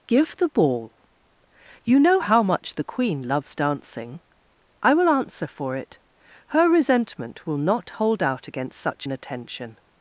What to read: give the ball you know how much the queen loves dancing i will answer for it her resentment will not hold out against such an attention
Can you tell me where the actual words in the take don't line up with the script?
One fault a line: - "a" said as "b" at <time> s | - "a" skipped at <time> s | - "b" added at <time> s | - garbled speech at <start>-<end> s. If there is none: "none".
none